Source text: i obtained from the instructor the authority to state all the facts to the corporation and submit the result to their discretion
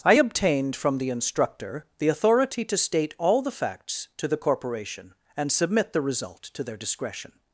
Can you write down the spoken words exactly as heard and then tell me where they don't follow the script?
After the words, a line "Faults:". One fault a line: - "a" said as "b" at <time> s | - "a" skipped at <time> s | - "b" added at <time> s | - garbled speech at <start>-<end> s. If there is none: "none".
i obtained from the instructor the authority to state all the facts to the corporation and submit the result to their discretion
Faults:
none